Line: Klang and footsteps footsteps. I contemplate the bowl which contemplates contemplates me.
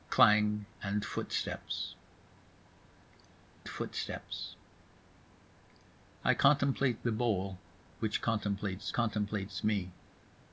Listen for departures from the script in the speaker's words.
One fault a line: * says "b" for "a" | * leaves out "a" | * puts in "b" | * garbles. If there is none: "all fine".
all fine